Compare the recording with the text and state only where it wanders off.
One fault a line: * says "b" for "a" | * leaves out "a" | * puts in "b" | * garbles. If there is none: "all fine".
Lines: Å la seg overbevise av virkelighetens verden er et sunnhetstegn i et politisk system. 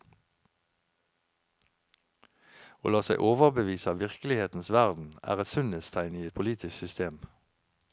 all fine